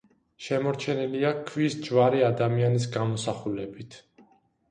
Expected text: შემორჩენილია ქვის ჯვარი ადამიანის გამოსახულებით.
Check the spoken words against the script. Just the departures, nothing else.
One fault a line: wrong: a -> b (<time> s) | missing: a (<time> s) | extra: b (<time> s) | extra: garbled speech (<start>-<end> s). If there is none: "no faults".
no faults